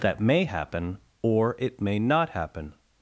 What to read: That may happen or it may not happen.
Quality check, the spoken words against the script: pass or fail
pass